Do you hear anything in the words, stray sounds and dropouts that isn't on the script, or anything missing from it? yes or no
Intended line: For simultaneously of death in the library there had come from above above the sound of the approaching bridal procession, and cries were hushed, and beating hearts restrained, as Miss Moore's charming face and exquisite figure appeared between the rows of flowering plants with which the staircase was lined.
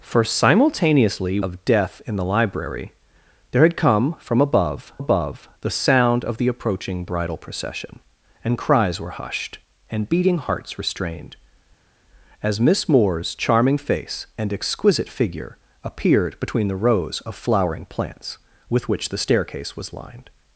no